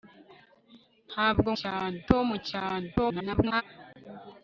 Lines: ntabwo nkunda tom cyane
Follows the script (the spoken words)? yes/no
no